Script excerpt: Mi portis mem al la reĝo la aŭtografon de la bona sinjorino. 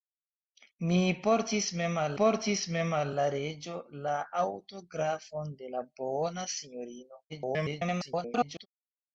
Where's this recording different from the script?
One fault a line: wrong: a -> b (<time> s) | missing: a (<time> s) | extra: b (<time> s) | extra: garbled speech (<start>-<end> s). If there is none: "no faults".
extra: portis mem al (2.2 s)
extra: garbled speech (7.3-8.7 s)